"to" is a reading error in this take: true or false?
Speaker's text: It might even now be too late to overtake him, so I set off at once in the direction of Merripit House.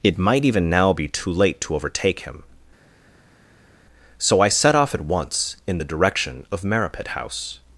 false